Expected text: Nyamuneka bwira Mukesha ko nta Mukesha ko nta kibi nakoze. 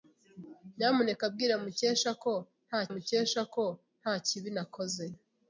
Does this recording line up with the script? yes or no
yes